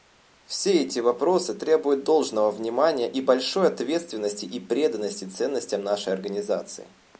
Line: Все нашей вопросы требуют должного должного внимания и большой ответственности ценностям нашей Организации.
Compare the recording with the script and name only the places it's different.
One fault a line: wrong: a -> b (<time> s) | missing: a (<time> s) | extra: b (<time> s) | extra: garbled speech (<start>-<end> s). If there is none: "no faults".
wrong: нашей -> эти (0.8 s)
missing: должного (2.5 s)
extra: и преданности (4.5 s)